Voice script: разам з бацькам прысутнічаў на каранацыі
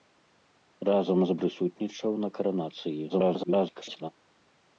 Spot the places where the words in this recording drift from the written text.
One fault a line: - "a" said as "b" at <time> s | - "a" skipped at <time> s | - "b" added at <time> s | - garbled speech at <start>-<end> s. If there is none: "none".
- "бацькам" skipped at 1.4 s
- garbled speech at 3.1-4.1 s